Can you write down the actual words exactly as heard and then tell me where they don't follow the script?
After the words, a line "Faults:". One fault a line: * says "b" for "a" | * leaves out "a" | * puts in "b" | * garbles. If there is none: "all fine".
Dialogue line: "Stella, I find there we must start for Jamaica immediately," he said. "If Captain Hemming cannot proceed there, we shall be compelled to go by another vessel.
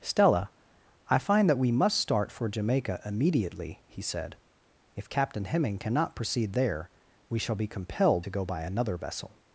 "Stella, I find that we must start for Jamaica immediately," he said. "If Captain Hemming cannot proceed there, we shall be compelled to go by another vessel.
Faults:
* says "that" for "there"